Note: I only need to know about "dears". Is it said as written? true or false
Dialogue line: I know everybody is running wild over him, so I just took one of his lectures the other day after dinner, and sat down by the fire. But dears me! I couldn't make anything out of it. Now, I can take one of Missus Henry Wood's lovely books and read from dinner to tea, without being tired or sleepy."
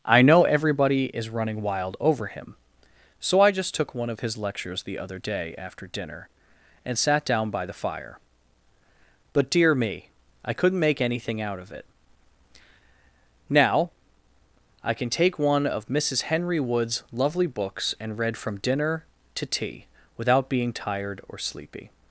false